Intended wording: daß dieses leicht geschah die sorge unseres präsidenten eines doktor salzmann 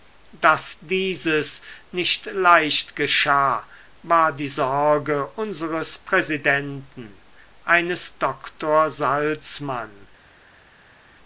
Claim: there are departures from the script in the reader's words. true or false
true